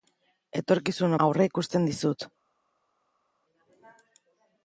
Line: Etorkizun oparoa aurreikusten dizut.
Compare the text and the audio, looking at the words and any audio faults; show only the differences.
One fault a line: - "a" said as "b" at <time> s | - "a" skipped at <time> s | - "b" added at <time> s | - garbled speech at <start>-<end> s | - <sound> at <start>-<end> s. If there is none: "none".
- "oparoa" skipped at 1.1 s